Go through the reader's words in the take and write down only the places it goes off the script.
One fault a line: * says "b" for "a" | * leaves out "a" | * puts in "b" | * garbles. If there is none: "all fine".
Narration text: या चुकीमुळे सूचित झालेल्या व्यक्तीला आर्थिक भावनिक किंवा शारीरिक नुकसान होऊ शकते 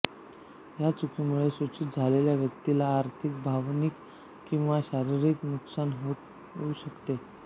all fine